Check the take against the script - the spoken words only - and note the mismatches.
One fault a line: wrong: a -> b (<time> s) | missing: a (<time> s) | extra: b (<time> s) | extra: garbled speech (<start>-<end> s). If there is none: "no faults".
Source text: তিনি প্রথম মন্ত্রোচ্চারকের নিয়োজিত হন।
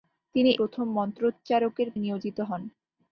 no faults